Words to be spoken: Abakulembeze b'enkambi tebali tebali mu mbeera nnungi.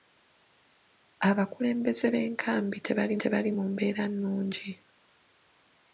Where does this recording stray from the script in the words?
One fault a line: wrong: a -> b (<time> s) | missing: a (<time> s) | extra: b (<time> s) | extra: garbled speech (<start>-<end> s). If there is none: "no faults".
no faults